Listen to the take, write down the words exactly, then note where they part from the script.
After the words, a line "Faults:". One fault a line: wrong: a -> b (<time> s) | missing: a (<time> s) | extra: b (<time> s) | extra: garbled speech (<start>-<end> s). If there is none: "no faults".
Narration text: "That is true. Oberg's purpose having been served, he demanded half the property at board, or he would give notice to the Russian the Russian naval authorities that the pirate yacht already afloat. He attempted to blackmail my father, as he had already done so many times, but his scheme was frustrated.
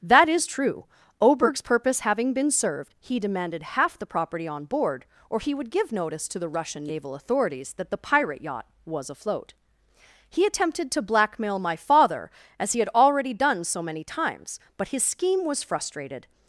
"That is true. Oberg's purpose having been served, he demanded half the property on board, or he would give notice to the Russian naval authorities that the pirate yacht was afloat. He attempted to blackmail my father, as he had already done so many times, but his scheme was frustrated.
Faults:
wrong: at -> on (4.5 s)
missing: the Russian (6.8 s)
wrong: already -> was (8.8 s)